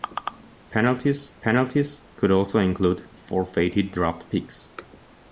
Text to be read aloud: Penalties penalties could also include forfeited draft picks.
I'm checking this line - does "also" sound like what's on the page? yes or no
yes